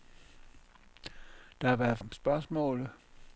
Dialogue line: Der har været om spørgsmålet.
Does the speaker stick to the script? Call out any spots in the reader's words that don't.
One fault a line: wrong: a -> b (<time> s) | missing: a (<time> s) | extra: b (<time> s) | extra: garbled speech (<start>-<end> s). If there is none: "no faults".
no faults